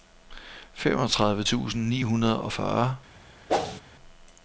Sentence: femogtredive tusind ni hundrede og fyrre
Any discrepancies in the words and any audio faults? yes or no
yes